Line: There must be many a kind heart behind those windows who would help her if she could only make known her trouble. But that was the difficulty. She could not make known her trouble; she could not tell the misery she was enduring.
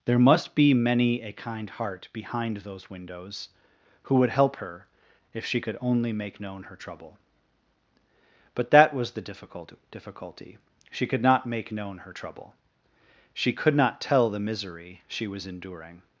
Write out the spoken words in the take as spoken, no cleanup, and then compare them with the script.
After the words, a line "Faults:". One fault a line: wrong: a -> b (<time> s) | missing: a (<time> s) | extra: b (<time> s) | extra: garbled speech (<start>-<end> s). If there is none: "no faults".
There must be many a kind heart behind those windows who would help her if she could only make known her trouble. But that was the difficult difficulty. She could not make known her trouble; she could not tell the misery she was enduring.
Faults:
extra: difficult (9.2 s)